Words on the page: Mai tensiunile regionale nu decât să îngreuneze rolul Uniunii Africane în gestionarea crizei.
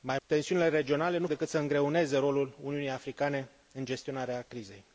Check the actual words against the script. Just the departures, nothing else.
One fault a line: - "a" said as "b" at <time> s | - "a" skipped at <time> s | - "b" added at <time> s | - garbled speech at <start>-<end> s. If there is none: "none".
none